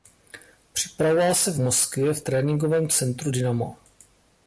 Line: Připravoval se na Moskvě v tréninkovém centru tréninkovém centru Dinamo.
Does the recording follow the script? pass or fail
fail